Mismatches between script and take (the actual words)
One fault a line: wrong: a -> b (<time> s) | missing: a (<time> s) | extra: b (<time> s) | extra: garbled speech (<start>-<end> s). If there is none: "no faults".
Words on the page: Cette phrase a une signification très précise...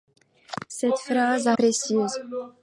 missing: une signification très (1.5 s)